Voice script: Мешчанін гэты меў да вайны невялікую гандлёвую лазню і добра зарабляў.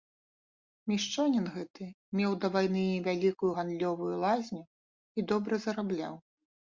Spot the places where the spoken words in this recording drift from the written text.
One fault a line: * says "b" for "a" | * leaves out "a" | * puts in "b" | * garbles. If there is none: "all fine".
all fine